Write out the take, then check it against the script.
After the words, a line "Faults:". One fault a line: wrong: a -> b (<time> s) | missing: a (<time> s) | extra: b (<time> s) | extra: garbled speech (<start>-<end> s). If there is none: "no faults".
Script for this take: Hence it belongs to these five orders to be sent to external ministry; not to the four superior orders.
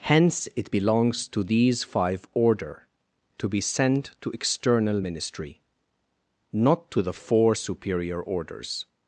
Hence it belongs to these five order to be sent to external ministry; not to the four superior orders.
Faults:
wrong: orders -> order (2.3 s)